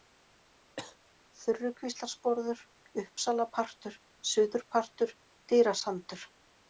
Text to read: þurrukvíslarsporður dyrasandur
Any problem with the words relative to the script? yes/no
yes